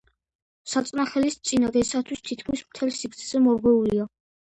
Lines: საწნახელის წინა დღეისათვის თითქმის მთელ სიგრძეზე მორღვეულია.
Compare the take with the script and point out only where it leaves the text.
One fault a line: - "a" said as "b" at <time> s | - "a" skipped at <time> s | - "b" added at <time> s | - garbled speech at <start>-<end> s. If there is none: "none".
none